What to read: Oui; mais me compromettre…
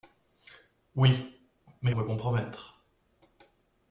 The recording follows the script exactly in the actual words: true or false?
true